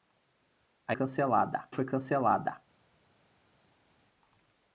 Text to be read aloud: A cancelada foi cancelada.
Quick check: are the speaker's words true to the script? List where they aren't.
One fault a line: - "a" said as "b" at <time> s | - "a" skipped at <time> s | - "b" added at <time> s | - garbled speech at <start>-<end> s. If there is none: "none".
none